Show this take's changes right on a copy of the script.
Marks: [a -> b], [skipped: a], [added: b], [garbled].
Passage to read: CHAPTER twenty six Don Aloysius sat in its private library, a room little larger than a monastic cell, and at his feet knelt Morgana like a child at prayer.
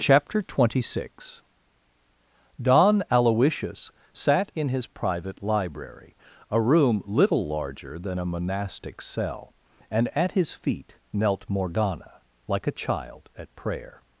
CHAPTER twenty six Don Aloysius sat in [its -> his] private library, a room little larger than a monastic cell, and at his feet knelt Morgana like a child at prayer.